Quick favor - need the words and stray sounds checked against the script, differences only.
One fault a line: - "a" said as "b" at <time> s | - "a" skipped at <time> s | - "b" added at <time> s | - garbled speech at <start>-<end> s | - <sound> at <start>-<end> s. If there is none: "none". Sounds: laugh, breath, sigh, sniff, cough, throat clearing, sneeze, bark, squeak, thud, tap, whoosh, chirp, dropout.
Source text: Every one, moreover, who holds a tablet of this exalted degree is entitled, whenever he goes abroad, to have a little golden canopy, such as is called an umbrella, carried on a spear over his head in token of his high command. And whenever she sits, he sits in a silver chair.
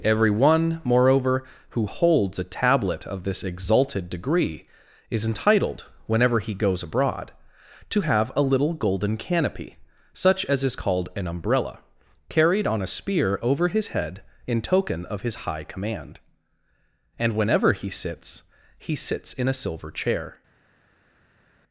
- "she" said as "he" at 17.7 s